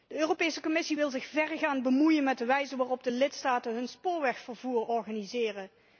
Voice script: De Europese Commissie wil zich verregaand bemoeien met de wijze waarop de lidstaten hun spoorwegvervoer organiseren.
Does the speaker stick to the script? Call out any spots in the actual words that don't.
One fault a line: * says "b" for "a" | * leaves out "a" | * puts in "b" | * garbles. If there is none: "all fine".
all fine